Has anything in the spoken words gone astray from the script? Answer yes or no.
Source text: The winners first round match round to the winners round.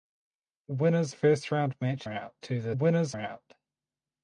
no